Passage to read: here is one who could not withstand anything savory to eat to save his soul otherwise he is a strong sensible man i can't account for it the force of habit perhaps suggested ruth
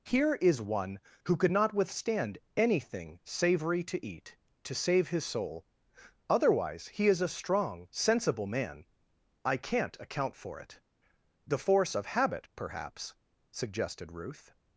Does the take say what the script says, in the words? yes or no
yes